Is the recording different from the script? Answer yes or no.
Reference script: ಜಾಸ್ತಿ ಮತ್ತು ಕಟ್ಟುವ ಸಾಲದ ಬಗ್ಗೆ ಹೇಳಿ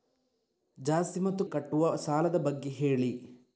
no